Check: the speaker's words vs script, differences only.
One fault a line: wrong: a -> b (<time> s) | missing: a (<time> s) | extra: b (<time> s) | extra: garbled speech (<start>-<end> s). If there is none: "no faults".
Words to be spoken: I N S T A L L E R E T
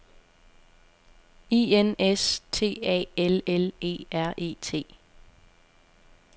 no faults